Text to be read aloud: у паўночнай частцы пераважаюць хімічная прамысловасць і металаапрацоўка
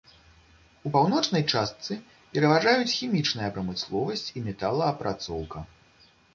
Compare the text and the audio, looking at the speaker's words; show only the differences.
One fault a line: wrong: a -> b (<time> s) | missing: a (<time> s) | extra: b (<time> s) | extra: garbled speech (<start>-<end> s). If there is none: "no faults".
no faults